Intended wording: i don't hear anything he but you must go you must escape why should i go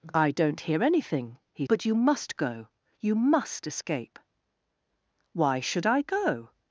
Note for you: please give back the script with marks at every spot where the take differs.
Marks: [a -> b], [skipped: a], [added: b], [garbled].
i don't hear anything he but you must go you must escape why should i go